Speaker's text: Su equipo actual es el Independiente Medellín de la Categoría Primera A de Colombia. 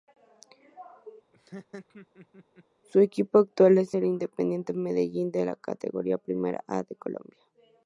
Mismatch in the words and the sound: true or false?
true